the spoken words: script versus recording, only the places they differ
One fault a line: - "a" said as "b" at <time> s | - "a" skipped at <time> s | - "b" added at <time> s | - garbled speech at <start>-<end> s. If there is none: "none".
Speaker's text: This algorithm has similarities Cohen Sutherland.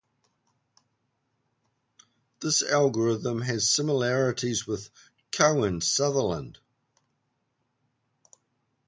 - "with" added at 4.7 s